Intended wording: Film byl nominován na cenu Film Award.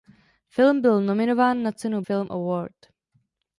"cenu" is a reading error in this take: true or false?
false